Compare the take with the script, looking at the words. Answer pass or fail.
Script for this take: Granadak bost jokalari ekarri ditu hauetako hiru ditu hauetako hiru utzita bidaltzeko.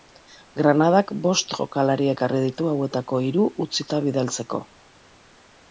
fail